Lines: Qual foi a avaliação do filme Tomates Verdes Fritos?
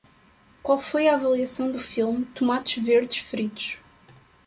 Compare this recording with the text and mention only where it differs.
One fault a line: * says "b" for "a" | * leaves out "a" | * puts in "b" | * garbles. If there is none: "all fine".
all fine